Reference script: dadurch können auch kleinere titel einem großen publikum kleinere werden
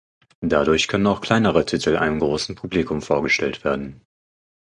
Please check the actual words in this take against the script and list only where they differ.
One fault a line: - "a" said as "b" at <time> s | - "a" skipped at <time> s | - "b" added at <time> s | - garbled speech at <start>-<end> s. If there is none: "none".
- "kleinere" said as "vorgestellt" at 3.0 s